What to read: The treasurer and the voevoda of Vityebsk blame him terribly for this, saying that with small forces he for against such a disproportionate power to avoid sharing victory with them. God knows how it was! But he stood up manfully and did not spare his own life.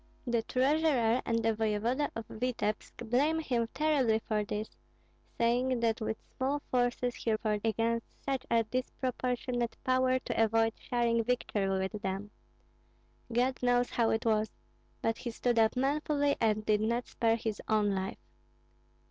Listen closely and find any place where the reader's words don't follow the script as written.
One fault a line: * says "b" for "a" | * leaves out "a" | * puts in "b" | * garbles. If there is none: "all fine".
all fine